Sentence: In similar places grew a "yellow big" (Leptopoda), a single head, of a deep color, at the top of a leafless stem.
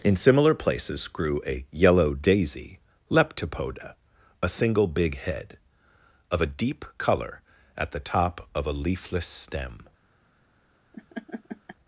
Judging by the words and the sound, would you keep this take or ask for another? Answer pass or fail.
fail